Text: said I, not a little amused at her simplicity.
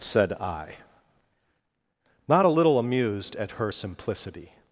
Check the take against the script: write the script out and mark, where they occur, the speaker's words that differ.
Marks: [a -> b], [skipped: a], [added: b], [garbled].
said I, not a little amused at her simplicity.